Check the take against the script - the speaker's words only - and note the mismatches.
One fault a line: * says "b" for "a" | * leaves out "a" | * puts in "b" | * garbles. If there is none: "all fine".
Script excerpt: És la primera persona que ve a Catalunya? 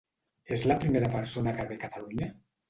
all fine